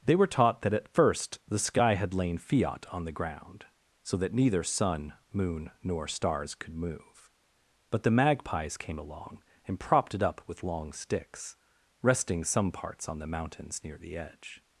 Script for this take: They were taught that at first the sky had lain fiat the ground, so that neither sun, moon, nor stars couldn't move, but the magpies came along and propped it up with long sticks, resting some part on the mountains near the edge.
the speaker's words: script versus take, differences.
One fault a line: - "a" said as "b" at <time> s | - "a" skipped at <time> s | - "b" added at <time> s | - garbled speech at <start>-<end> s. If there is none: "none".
- "on" added at 2.9 s
- "couldn't" said as "could" at 6.5 s
- "part" said as "parts" at 12.7 s